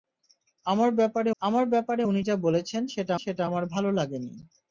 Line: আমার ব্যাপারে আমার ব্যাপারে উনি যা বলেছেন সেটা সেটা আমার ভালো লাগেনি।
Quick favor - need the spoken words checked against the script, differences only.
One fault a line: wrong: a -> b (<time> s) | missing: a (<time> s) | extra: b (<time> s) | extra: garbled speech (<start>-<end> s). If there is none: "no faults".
no faults